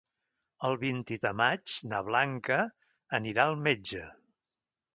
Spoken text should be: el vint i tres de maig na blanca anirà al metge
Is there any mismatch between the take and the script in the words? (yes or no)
yes